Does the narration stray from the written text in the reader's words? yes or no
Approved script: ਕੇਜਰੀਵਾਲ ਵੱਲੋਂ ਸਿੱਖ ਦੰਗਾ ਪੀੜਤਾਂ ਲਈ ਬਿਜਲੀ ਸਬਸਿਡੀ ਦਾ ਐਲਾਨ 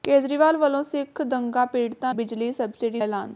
yes